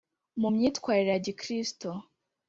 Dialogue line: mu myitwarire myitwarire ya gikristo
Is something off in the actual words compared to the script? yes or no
yes